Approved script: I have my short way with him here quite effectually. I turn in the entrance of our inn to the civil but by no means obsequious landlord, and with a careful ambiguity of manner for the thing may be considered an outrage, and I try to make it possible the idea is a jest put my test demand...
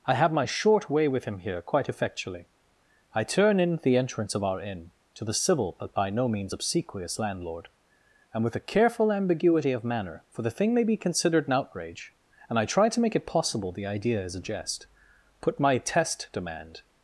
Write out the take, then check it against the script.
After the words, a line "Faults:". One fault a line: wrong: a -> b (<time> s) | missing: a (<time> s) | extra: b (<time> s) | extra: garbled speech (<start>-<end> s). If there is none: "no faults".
I have my short way with him here quite effectually. I turn in the entrance of our inn to the civil but by no means obsequious landlord, and with a careful ambiguity of manner for the thing may be considered an outrage, and I try to make it possible the idea is a jest put my test demand...
Faults:
no faults